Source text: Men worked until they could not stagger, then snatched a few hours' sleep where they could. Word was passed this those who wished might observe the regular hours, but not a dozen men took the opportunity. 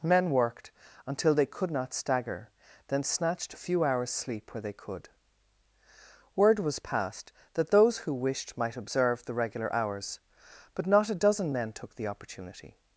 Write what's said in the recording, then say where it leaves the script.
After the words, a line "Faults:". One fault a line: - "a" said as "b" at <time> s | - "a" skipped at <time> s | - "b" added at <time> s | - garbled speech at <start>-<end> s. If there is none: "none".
Men worked until they could not stagger, then snatched a few hours' sleep where they could. Word was passed that those who wished might observe the regular hours, but not a dozen men took the opportunity.
Faults:
- "this" said as "that" at 7.5 s